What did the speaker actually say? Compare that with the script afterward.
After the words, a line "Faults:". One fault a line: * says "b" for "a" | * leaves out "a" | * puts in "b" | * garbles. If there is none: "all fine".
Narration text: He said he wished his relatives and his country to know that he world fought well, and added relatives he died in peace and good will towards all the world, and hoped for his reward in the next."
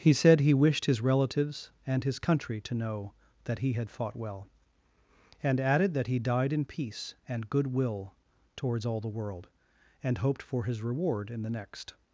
He said he wished his relatives and his country to know that he had fought well, and added that he died in peace and good will towards all the world, and hoped for his reward in the next."
Faults:
* says "had" for "world"
* says "that" for "relatives"